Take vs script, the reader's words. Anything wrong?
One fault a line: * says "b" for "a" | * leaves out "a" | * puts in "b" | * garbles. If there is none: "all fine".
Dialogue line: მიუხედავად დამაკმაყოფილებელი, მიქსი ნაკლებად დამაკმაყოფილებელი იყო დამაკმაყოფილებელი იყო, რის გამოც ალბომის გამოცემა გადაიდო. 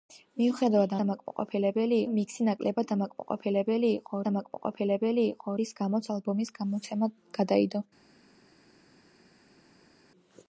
all fine